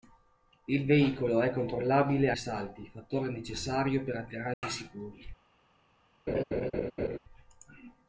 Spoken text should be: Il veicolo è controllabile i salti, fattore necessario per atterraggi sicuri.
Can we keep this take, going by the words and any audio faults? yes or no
no